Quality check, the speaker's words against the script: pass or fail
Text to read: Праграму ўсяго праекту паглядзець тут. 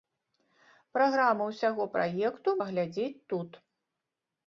pass